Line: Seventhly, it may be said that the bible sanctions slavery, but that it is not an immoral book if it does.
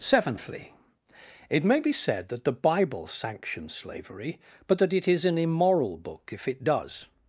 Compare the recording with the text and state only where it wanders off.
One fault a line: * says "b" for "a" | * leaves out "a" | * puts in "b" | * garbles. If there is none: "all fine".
* leaves out "not"